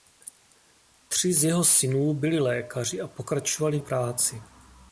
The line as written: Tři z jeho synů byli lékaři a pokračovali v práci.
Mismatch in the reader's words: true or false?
false